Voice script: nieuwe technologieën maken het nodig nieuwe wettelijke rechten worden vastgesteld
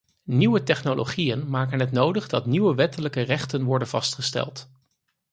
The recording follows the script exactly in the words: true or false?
false